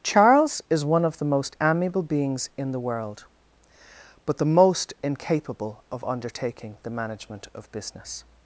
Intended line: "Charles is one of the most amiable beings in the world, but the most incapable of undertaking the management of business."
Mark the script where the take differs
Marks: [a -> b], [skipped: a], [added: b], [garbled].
"Charles is one of the most amiable beings in the world, but the most incapable of undertaking the management of business."